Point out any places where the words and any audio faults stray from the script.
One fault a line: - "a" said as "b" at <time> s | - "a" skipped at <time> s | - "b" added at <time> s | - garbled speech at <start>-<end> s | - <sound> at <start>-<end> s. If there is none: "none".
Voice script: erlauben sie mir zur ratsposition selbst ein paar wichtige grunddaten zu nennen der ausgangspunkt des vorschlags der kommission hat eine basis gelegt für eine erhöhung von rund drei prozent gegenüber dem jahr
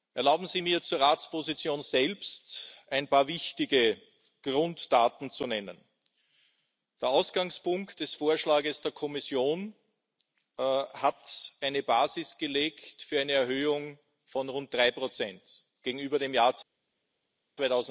none